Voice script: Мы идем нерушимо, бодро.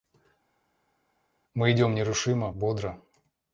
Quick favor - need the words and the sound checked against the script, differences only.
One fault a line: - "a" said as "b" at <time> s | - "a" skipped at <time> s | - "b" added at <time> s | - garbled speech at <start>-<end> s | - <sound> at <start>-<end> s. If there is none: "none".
none